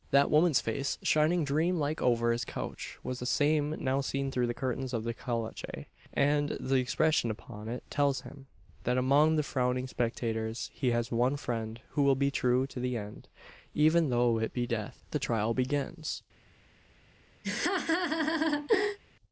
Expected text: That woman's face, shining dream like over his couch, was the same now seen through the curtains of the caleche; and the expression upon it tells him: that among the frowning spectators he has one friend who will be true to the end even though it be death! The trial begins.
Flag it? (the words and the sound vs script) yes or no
yes